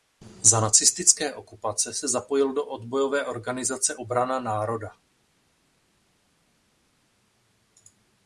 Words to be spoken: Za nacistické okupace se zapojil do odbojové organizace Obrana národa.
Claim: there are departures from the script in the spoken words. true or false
false